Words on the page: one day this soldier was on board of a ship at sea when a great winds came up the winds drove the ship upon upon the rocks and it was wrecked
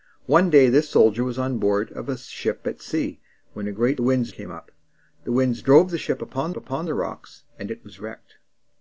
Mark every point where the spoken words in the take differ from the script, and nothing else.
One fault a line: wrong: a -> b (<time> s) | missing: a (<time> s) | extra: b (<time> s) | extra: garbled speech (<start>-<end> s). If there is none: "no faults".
no faults